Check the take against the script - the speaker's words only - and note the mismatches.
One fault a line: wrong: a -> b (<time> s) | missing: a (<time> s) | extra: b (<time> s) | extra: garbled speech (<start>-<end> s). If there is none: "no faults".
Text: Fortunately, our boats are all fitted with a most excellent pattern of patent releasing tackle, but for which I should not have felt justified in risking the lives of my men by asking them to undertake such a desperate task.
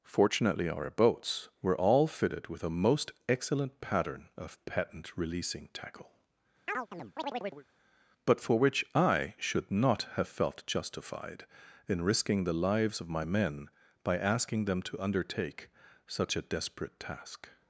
wrong: are -> were (1.6 s)